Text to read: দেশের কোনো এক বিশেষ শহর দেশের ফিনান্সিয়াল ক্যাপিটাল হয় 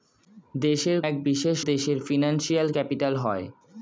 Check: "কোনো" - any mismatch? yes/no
yes